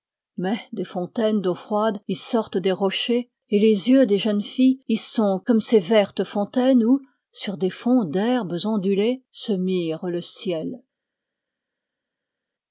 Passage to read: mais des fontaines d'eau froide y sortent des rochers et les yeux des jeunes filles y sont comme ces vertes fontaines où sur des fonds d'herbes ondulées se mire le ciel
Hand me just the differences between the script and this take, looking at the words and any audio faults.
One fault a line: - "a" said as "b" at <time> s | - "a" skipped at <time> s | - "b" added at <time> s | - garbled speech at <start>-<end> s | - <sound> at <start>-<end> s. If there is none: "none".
none